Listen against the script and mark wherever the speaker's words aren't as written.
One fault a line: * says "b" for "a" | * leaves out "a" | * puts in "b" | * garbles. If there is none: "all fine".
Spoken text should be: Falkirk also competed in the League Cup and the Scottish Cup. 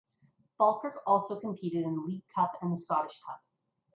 all fine